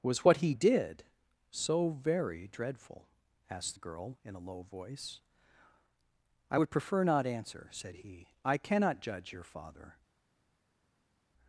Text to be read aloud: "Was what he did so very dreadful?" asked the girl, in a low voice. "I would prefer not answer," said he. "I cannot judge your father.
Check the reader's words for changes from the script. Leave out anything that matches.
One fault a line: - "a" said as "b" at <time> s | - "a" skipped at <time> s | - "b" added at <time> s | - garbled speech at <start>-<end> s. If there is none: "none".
none